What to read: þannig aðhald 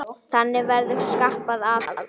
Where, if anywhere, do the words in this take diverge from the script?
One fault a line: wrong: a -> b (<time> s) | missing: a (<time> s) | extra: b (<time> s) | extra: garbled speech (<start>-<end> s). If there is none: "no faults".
extra: verður skapað (0.7 s)